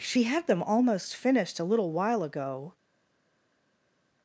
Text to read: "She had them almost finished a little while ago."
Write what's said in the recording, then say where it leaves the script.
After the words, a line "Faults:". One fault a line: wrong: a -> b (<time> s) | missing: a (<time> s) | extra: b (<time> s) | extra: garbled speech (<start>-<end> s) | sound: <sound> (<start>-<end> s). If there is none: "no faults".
"She had them almost finished a little while ago."
Faults:
no faults